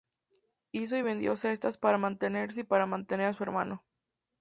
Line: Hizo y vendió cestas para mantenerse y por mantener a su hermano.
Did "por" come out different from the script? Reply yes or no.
yes